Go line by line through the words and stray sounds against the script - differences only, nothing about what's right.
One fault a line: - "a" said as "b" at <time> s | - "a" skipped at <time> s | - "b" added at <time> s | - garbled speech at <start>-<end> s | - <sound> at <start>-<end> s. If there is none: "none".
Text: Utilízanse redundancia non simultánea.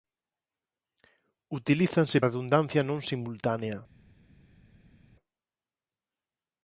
none